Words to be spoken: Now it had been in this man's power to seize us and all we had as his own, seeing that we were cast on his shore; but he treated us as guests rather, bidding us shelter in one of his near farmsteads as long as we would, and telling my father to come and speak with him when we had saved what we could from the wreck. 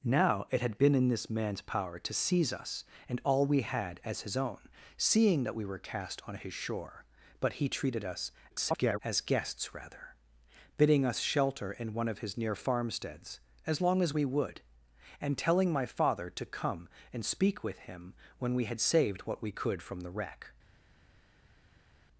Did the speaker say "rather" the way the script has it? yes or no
yes